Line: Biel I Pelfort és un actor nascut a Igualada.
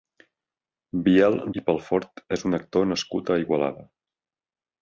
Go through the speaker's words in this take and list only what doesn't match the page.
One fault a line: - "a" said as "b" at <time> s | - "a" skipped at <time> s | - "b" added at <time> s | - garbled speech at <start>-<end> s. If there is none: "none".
none